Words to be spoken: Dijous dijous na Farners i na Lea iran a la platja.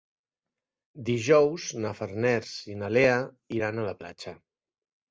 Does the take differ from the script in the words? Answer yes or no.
yes